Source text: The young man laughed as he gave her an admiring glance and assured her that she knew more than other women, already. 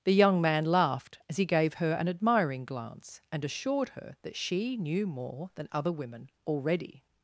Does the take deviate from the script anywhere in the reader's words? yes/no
no